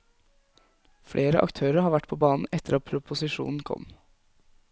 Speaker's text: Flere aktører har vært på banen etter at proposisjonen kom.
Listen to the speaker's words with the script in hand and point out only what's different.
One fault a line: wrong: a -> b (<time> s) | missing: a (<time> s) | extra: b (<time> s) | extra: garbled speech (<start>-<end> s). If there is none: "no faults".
no faults